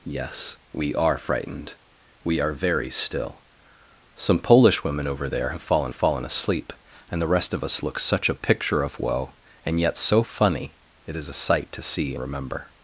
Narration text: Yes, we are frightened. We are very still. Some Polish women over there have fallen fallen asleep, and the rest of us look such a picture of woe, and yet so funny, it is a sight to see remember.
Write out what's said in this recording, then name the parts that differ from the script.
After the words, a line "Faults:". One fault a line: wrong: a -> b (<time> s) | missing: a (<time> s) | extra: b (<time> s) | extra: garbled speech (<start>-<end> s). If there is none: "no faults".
Yes, we are frightened. We are very still. Some Polish women over there have fallen fallen asleep, and the rest of us look such a picture of woe, and yet so funny, it is a sight to see remember.
Faults:
no faults